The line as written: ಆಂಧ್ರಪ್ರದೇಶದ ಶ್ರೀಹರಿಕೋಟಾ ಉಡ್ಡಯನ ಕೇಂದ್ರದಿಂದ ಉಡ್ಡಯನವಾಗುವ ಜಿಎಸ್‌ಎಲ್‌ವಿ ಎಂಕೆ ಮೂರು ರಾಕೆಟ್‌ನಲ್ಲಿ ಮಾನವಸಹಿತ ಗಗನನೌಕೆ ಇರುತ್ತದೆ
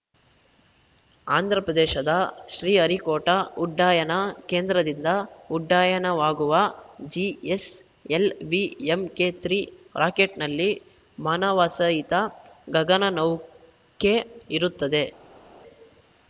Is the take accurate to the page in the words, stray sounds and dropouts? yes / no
yes